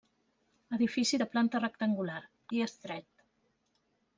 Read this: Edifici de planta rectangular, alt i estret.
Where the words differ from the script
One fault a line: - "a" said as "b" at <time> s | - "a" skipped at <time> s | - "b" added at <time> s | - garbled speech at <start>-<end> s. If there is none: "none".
- "alt" skipped at 2.2 s